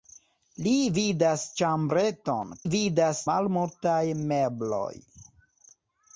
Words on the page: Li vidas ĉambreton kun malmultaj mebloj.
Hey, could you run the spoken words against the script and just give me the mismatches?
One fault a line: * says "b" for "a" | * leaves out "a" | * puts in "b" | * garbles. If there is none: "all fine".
* says "vidas" for "kun"